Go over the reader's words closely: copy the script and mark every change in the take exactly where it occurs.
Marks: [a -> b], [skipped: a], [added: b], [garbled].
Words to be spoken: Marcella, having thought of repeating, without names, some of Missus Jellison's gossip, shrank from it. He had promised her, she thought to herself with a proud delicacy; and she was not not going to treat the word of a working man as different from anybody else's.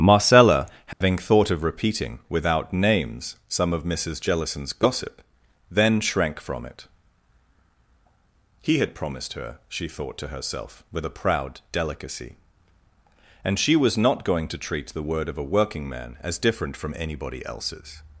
Marcella, having thought of repeating, without names, some of Missus Jellison's gossip, [added: then] shrank from it. He had promised her, she thought to herself with a proud delicacy; and she was not [skipped: not] going to treat the word of a working man as different from anybody else's.